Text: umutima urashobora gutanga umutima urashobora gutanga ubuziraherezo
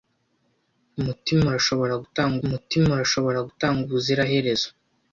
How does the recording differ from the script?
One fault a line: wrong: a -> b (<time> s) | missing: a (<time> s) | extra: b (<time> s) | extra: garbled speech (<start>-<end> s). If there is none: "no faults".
no faults